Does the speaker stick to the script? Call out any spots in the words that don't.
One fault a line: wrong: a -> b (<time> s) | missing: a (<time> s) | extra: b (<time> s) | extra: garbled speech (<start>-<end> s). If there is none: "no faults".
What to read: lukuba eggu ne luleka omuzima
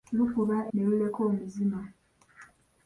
missing: eggu (0.6 s)